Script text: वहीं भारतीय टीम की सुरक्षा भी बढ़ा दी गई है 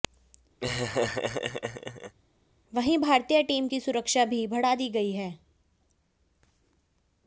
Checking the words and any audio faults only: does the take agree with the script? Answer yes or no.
no